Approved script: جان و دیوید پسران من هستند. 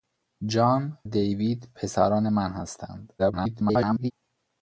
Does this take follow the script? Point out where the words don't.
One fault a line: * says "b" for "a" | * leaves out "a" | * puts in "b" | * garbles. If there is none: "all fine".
* leaves out "و"
* garbles